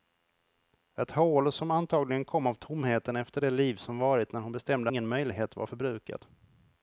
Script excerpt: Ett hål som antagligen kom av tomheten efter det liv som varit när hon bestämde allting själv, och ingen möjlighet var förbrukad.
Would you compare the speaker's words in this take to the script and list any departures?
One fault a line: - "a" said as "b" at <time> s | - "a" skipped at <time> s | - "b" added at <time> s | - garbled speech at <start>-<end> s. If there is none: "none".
- "allting själv och" skipped at 4.9 s